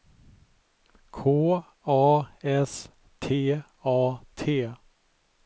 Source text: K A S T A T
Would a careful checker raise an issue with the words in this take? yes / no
no